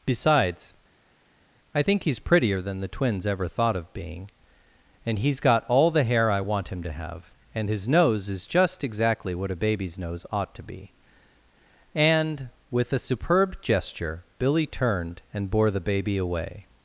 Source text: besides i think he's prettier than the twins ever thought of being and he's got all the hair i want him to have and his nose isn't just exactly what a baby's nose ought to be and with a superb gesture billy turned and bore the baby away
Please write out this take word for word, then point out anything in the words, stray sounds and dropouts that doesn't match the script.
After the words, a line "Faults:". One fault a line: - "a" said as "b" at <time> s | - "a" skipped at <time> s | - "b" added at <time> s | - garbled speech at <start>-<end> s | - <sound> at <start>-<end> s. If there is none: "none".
besides i think he's prettier than the twins ever thought of being and he's got all the hair i want him to have and his nose is just exactly what a baby's nose ought to be and with a superb gesture billy turned and bore the baby away
Faults:
- "isn't" said as "is" at 8.3 s